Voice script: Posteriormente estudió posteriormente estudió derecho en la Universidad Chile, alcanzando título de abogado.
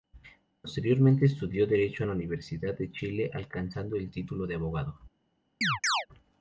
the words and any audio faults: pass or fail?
fail